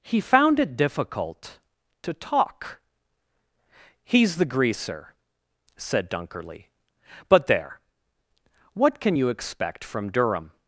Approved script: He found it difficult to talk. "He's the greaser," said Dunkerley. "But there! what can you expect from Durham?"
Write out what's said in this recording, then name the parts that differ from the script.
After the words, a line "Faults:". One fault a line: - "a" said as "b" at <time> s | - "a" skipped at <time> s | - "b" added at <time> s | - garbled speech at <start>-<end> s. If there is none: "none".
He found it difficult to talk. "He's the greaser," said Dunkerley. "But there! what can you expect from Durham?"
Faults:
none